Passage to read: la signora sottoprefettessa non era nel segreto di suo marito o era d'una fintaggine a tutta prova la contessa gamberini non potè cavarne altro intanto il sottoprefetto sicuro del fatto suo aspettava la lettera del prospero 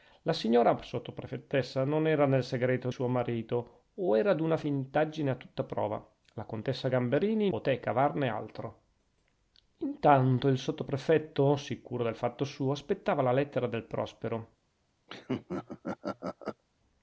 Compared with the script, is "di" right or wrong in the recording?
wrong